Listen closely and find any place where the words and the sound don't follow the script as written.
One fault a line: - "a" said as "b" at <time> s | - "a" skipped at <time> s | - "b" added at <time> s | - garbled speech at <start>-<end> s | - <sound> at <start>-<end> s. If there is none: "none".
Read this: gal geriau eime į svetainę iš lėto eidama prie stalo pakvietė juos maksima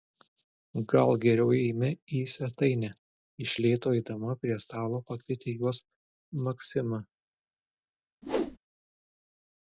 - whoosh at 8.2-8.6 s